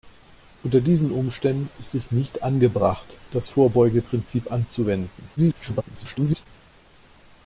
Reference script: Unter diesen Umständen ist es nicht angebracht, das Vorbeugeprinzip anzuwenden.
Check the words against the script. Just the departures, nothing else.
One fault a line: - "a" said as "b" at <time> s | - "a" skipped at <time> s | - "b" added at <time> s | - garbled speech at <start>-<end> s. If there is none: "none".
- garbled speech at 5.4-6.5 s